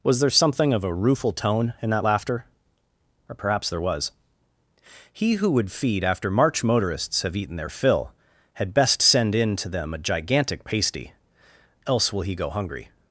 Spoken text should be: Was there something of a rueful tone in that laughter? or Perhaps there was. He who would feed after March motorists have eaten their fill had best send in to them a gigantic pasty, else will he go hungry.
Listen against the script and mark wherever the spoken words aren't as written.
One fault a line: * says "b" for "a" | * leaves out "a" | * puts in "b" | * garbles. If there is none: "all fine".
all fine